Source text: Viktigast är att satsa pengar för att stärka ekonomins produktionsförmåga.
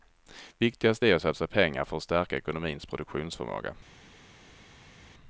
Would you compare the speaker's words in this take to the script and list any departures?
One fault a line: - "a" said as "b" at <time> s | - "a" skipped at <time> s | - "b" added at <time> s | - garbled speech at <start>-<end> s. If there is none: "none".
none